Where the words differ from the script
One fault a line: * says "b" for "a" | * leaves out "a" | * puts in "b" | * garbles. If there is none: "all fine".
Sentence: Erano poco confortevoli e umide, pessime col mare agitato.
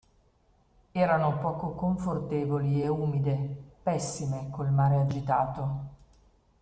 all fine